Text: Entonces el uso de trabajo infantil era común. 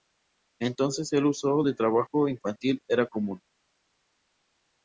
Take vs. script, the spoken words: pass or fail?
pass